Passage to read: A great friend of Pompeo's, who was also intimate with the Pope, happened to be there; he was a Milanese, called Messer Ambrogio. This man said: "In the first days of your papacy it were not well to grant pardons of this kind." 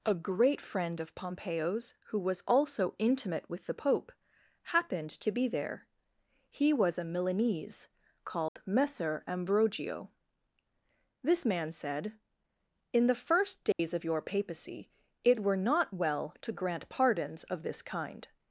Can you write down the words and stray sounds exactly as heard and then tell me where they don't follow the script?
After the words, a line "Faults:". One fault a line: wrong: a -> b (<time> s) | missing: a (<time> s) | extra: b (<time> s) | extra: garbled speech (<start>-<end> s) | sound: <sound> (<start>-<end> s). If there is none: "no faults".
A great friend of Pompeo's, who was also intimate with the Pope, happened to be there; he was a Milanese, called Messer Ambrogio. This man said: "In the first days of your papacy it were not well to grant pardons of this kind."
Faults:
sound: dropout (8.5-8.6 s)
sound: dropout (13.7-13.8 s)